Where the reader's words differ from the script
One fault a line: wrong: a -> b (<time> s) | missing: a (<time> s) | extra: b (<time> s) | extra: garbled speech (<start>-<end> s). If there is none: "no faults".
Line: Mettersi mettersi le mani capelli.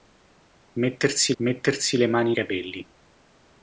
no faults